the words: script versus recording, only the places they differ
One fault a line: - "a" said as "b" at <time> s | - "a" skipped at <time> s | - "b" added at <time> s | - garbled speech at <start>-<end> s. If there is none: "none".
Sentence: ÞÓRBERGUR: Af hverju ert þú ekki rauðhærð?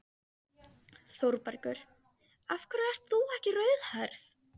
none